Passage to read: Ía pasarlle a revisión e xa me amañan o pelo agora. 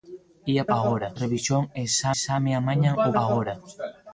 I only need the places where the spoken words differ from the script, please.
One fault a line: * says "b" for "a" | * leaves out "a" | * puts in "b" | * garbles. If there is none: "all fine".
* says "agora" for "pasarlle"
* puts in "xa"
* leaves out "pelo"